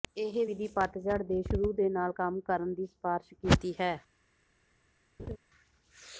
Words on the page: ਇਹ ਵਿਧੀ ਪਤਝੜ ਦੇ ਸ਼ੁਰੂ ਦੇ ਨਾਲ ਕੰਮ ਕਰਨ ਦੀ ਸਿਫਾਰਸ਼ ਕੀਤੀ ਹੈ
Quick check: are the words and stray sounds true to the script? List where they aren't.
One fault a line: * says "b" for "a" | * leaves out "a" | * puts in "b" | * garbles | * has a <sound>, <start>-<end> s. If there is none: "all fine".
* has a laugh, 5.2-5.4 s